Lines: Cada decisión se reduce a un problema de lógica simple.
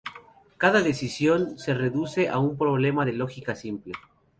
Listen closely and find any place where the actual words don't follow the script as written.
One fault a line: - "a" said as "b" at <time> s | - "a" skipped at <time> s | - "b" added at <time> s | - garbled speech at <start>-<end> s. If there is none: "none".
none